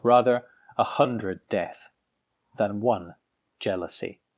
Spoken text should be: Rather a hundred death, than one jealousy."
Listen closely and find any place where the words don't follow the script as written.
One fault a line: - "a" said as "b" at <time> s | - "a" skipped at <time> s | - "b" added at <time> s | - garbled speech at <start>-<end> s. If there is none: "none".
none